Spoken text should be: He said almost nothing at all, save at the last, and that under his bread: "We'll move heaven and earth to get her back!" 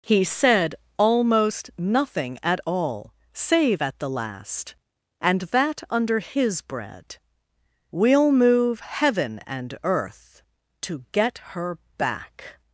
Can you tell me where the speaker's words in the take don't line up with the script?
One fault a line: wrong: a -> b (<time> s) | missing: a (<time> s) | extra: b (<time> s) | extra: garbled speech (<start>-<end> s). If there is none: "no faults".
no faults